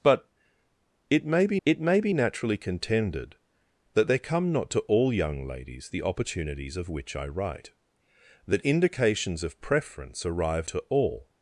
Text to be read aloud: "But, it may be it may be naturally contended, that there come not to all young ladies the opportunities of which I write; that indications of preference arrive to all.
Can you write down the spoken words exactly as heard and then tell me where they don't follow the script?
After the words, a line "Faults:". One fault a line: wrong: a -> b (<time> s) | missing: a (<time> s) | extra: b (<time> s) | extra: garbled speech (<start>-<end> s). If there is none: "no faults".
"But, it may be it may be naturally contended, that there come not to all young ladies the opportunities of which I write; that indications of preference arrive to all.
Faults:
no faults